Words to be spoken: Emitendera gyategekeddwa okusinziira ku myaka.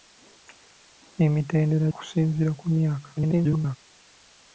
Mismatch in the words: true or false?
true